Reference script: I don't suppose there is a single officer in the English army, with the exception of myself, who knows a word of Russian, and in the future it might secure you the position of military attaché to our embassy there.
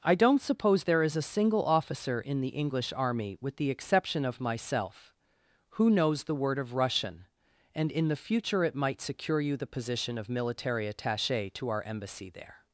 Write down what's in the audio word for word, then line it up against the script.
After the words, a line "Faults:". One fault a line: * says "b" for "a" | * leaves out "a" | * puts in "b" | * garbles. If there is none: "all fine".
I don't suppose there is a single officer in the English army, with the exception of myself, who knows the word of Russian, and in the future it might secure you the position of military attaché to our embassy there.
Faults:
* says "the" for "a"